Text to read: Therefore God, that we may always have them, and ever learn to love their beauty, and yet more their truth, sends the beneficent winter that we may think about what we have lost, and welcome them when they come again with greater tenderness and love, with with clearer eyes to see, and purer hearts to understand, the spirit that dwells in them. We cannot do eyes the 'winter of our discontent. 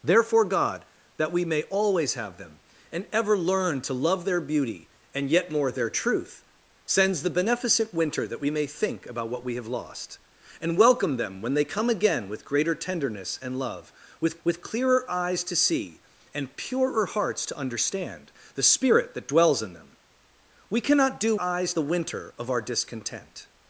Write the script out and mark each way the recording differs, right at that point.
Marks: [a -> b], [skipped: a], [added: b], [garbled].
Therefore God, that we may always have them, and ever learn to love their beauty, and yet more their truth, sends the beneficent winter that we may think about what we have lost, and welcome them when they come again with greater tenderness and love, with with clearer eyes to see, and purer hearts to understand, the spirit that dwells in them. We cannot do eyes the 'winter of our discontent.